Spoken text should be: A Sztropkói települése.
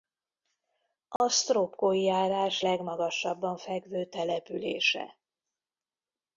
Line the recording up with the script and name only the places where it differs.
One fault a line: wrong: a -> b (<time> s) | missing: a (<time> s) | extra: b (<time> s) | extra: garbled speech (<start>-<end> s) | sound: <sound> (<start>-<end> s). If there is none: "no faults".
sound: dropout (1.2-1.2 s)
extra: járás legmagasabban fekvő (2.0 s)